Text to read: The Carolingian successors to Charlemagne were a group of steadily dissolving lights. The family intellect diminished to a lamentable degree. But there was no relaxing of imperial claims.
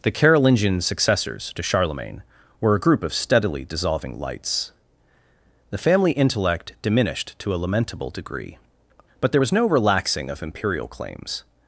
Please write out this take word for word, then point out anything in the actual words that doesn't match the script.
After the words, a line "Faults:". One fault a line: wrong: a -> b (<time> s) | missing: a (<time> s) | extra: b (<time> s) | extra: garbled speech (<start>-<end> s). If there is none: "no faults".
The Carolingian successors to Charlemagne were a group of steadily dissolving lights. The family intellect diminished to a lamentable degree. But there was no relaxing of imperial claims.
Faults:
no faults